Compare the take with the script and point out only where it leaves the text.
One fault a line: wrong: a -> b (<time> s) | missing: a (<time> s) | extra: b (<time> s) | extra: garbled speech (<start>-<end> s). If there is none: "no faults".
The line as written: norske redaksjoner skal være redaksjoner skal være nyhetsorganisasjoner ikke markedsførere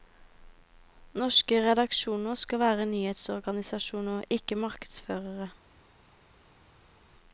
missing: redaksjoner skal være (2.9 s)